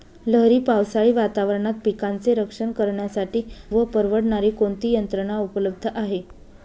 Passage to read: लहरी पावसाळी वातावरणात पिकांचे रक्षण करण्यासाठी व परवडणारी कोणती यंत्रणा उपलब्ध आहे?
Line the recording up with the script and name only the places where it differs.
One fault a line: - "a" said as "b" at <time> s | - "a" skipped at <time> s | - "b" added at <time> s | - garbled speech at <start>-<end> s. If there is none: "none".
none